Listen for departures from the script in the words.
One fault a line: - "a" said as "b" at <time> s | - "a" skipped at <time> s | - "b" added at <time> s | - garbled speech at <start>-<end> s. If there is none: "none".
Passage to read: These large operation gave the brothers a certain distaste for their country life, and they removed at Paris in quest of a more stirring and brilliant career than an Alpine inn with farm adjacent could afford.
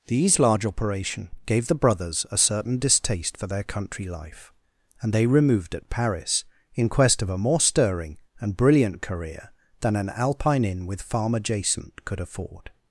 none